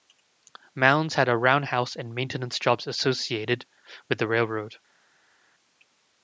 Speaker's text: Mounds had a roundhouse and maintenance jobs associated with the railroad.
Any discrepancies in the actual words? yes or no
no